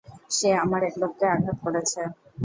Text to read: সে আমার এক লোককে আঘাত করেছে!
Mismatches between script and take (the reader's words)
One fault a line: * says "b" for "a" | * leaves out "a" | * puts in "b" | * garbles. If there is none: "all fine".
all fine